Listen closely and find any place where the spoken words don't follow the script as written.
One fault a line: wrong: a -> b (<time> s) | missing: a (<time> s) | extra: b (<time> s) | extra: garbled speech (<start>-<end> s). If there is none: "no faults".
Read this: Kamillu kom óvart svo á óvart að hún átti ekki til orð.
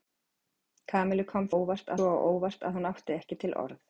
no faults